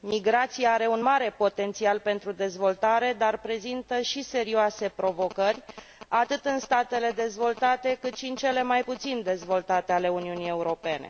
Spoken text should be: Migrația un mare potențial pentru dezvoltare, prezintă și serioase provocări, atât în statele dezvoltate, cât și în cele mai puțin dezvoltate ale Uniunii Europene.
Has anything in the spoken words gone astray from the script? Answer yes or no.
yes